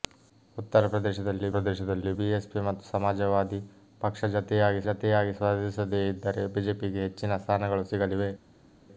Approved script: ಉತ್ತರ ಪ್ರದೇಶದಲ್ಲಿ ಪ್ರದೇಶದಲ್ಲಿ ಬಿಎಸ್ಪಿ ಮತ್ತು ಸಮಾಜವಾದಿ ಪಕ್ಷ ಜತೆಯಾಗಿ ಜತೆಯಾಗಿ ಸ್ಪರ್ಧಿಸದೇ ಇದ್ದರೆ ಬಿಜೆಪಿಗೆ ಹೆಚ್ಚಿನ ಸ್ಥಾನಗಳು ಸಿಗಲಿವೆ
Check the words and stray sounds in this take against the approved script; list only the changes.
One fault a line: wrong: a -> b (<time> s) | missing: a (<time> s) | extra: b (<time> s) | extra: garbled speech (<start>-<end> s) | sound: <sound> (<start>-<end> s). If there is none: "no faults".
no faults